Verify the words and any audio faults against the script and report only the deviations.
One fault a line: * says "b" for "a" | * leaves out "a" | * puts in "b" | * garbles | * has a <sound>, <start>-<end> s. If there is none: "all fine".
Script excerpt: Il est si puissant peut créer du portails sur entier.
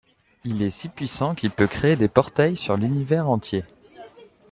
* puts in "qu'il"
* says "des" for "du"
* puts in "l'Univers"